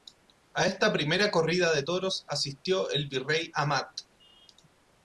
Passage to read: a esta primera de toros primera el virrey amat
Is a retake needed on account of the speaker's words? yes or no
yes